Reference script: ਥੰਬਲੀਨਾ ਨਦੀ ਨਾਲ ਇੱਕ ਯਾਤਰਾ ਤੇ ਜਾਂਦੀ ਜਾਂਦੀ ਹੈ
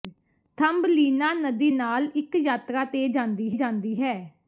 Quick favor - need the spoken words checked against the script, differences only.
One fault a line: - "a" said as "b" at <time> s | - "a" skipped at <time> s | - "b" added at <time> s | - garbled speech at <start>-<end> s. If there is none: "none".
none